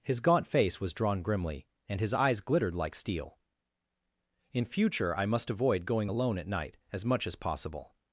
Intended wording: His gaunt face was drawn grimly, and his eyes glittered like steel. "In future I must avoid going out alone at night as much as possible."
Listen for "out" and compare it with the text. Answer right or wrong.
wrong